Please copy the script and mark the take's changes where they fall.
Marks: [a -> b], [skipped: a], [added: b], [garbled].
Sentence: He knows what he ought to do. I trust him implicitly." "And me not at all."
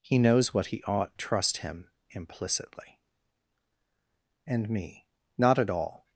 He knows what he ought [skipped: to do. I] trust him implicitly." "And me not at all."